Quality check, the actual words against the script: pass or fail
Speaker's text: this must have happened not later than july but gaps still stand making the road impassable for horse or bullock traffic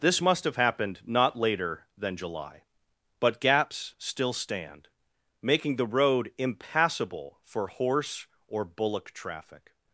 pass